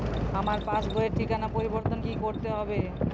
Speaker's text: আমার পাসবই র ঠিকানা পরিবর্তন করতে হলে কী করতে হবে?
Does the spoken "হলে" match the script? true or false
false